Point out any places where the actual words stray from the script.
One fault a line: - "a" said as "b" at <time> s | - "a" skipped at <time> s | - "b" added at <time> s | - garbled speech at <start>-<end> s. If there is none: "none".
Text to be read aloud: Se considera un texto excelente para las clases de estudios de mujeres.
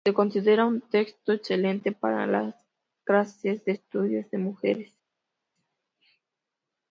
none